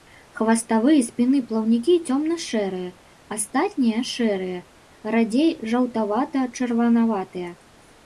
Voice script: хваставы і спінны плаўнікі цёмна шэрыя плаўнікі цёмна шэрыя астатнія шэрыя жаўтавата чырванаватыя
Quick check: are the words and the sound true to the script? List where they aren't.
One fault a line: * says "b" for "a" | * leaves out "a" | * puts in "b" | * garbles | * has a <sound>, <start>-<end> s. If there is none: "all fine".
* says "астатнія" for "плаўнікі цёмна"
* says "радзей" for "астатнія шэрыя"